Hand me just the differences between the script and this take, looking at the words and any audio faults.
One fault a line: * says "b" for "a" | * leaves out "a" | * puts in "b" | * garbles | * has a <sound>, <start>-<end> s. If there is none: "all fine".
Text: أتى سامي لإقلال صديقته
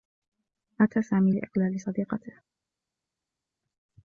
all fine